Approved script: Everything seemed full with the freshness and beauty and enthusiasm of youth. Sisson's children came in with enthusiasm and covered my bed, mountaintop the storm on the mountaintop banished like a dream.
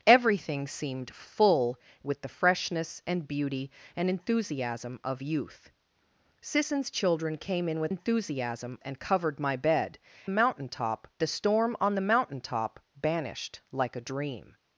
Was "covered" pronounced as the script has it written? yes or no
yes